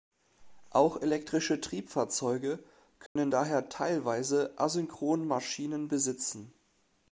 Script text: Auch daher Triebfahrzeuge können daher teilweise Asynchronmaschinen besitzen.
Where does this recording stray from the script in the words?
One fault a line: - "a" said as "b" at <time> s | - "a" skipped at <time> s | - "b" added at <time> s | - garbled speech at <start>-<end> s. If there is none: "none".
- "daher" said as "elektrische" at 1.0 s